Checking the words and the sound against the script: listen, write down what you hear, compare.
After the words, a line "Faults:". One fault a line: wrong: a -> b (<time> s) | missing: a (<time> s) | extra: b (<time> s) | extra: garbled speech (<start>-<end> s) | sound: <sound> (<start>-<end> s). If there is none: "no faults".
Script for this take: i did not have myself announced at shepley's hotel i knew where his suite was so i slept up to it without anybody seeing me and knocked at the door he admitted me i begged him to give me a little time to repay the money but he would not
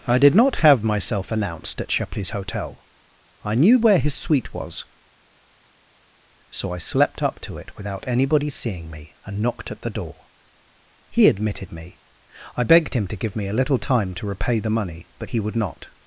i did not have myself announced at shepley's hotel i knew where his suite was so i slept up to it without anybody seeing me and knocked at the door he admitted me i begged him to give me a little time to repay the money but he would not
Faults:
no faults